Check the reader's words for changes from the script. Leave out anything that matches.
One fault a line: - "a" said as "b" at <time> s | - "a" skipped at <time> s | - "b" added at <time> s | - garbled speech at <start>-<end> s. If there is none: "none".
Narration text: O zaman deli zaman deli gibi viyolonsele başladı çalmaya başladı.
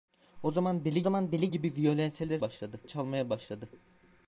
none